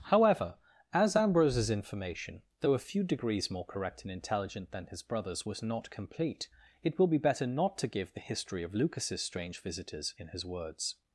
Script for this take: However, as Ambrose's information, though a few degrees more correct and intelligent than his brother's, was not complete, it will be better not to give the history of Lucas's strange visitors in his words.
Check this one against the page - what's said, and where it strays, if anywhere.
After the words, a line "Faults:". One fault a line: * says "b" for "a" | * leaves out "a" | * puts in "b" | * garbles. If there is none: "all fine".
However, as Ambrose's information, though a few degrees more correct and intelligent than his brother's, was not complete, it will be better not to give the history of Lucas's strange visitors in his words.
Faults:
all fine